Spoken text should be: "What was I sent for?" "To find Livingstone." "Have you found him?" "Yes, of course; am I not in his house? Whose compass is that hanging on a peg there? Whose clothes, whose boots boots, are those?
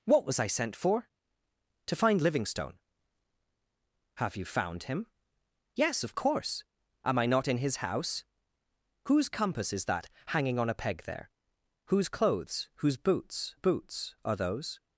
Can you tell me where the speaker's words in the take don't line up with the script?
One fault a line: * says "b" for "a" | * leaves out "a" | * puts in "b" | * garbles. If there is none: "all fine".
all fine